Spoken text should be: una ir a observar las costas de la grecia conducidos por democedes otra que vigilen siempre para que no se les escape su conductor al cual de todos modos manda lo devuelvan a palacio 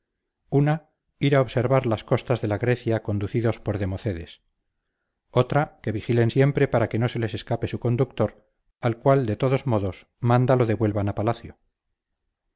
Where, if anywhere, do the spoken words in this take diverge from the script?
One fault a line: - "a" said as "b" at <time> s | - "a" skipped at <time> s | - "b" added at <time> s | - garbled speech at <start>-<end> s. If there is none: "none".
none